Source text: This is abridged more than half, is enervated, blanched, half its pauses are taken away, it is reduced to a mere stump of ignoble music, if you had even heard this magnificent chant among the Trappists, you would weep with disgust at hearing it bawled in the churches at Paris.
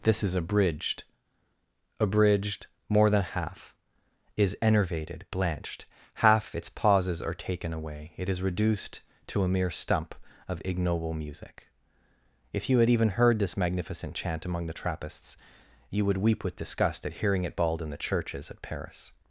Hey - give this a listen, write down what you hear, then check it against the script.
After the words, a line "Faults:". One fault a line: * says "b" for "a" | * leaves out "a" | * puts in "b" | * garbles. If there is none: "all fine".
This is abridged abridged more than half, is enervated, blanched, half its pauses are taken away, it is reduced to a mere stump of ignoble music, if you had even heard this magnificent chant among the Trappists, you would weep with disgust at hearing it bawled in the churches at Paris.
Faults:
* puts in "abridged"